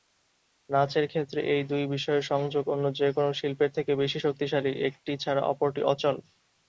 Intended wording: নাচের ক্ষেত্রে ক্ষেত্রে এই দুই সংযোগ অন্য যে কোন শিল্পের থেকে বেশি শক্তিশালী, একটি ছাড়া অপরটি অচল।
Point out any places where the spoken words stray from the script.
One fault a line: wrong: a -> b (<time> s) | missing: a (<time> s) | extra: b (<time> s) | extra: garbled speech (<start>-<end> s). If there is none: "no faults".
missing: ক্ষেত্রে (1.4 s)
extra: বিষয়ের (1.9 s)